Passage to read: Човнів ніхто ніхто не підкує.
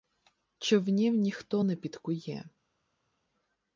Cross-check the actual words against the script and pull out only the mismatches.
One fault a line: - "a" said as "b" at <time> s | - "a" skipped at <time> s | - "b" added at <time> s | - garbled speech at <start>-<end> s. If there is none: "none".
- "ніхто" skipped at 1.6 s